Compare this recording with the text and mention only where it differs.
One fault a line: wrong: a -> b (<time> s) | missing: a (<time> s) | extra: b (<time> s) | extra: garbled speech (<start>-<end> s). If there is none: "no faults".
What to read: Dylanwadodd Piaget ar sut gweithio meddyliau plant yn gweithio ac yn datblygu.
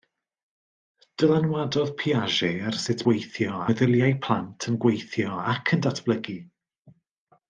no faults